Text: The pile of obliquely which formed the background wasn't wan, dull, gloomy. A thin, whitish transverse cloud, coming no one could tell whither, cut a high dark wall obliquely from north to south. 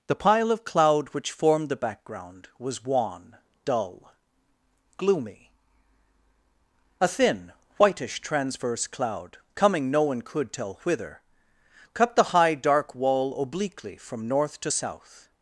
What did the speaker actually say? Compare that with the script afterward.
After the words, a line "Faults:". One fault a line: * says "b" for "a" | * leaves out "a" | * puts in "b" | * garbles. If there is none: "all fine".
The pile of cloud which formed the background was wan, dull, gloomy. A thin, whitish transverse cloud, coming no one could tell whither, cut the high dark wall obliquely from north to south.
Faults:
* says "cloud" for "obliquely"
* says "was" for "wasn't"
* says "the" for "a"